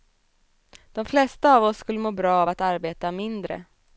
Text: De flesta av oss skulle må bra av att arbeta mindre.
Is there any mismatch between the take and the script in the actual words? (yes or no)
no